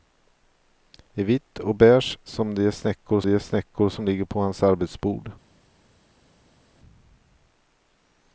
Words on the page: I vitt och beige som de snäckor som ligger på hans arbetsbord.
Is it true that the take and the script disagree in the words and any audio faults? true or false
true